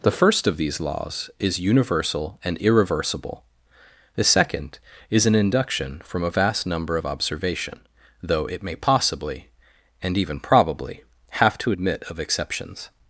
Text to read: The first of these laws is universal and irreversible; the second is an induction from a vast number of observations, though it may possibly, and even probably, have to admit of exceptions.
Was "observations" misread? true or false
true